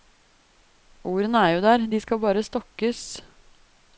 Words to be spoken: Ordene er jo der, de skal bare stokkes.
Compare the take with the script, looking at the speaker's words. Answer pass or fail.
pass